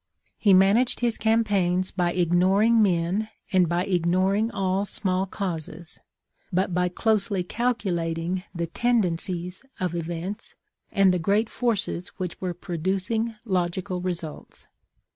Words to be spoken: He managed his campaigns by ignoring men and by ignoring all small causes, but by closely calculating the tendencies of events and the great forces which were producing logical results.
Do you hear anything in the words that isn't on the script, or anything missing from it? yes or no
no